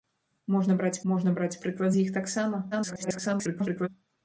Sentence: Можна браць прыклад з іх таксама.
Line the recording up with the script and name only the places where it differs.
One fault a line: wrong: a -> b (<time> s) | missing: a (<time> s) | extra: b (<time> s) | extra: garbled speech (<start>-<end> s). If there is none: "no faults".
extra: можна браць (1.1 s)
extra: garbled speech (2.7-3.9 s)